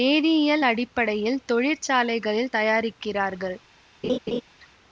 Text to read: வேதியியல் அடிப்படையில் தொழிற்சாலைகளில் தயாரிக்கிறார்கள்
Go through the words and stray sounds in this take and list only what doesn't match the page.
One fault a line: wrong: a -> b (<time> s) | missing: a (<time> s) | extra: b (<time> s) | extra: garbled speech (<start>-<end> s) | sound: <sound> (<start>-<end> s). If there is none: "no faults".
sound: laugh (4.0-4.4 s)